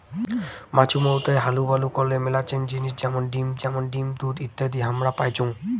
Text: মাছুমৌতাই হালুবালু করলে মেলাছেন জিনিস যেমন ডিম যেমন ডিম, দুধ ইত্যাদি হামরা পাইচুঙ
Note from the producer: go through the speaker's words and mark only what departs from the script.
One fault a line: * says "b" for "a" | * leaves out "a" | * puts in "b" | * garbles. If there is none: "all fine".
all fine